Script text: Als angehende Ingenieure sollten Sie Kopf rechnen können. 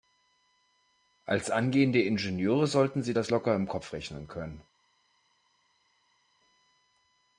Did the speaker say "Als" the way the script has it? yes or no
yes